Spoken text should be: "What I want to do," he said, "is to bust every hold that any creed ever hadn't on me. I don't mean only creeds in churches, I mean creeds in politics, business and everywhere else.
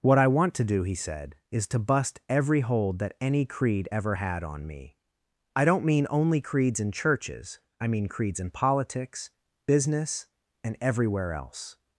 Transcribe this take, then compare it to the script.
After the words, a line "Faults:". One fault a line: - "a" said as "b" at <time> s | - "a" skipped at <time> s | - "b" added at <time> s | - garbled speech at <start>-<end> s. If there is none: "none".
"What I want to do," he said, "is to bust every hold that any creed ever had on me. I don't mean only creeds in churches, I mean creeds in politics, business and everywhere else.
Faults:
- "hadn't" said as "had" at 4.1 s